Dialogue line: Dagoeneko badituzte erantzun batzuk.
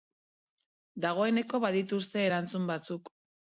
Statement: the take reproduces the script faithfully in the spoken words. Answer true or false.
true